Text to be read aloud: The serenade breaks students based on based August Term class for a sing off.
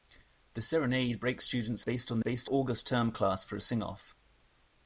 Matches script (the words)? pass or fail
pass